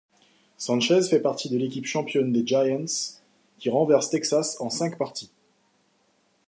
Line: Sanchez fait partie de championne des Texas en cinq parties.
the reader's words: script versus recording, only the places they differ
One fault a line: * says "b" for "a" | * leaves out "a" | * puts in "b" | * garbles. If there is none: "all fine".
* puts in "l'équipe"
* puts in "Giants qui renverse"